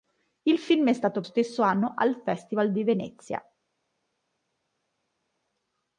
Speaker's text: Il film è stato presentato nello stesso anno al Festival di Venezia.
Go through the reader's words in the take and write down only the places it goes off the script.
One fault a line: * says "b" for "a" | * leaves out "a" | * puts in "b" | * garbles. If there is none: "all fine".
* leaves out "presentato nello"